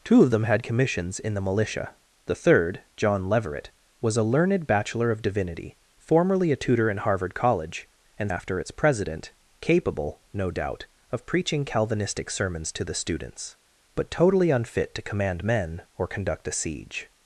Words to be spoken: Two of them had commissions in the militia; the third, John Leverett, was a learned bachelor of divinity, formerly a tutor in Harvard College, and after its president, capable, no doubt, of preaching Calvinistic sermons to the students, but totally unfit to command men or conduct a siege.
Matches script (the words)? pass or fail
pass